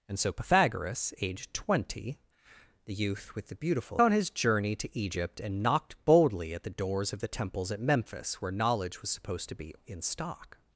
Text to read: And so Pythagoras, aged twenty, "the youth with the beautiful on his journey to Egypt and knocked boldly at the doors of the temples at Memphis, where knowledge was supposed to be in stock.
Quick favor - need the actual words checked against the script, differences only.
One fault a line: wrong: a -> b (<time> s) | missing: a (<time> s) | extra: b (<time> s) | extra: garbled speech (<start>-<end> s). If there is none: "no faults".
no faults